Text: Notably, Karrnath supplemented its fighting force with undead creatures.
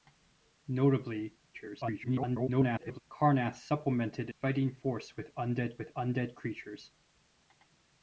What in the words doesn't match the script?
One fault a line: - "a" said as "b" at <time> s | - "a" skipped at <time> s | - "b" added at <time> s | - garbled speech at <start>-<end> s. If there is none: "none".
- garbled speech at 1.5-3.0 s
- "its" skipped at 4.3 s
- "with undead" added at 5.8 s